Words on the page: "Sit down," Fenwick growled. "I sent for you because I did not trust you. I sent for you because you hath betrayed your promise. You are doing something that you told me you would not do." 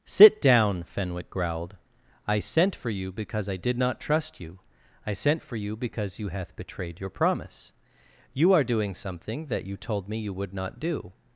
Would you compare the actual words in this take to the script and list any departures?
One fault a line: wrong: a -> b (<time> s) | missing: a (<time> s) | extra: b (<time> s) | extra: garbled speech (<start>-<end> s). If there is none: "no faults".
no faults